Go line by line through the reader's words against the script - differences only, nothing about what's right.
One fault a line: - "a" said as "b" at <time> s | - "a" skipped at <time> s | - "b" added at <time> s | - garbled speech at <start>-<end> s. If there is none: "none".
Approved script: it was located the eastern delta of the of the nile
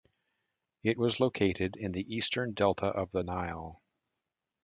- "in" added at 1.8 s
- "of the" skipped at 3.2 s